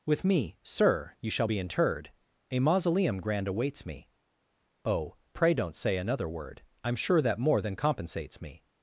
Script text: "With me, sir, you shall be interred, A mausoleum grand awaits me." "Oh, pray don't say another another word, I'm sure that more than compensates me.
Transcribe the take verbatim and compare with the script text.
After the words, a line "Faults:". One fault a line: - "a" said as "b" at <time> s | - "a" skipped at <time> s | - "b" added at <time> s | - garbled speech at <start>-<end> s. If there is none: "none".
"With me, sir, you shall be interred, A mausoleum grand awaits me." "Oh, pray don't say another word, I'm sure that more than compensates me.
Faults:
- "another" skipped at 6.3 s